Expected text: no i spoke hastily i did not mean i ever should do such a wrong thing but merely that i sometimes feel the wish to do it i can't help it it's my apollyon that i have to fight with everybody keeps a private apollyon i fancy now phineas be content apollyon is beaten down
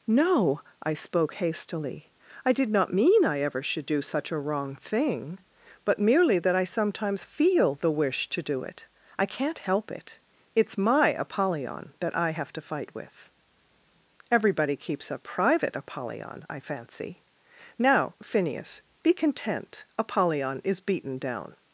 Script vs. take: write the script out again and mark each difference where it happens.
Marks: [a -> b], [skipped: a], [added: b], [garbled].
no i spoke hastily i did not mean i ever should do such a wrong thing but merely that i sometimes feel the wish to do it i can't help it it's my apollyon that i have to fight with everybody keeps a private apollyon i fancy now phineas be content apollyon is beaten down